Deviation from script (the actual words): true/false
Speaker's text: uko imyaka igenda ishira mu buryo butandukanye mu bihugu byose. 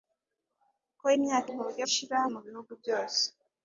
true